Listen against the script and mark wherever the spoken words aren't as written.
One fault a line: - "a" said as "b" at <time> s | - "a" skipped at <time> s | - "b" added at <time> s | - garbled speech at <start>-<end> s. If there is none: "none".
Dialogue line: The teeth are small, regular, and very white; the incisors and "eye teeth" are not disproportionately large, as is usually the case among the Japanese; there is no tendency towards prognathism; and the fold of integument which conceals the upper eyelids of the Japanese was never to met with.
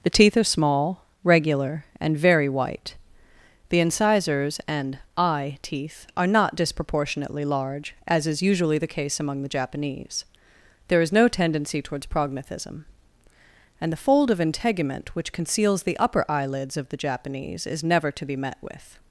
- "was" said as "is" at 17.7 s
- "be" added at 18.2 s